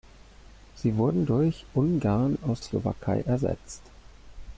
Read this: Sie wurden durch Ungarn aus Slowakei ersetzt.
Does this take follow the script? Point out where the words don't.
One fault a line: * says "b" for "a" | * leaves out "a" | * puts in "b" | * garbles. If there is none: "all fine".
all fine